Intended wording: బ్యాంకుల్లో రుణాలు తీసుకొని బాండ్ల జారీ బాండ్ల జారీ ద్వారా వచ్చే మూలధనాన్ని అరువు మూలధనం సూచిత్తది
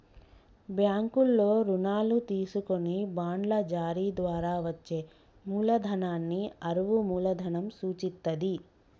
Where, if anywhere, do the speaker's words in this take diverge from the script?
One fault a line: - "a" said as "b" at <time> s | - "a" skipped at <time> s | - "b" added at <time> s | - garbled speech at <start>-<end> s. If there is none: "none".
- "బాండ్ల జారీ" skipped at 4.0 s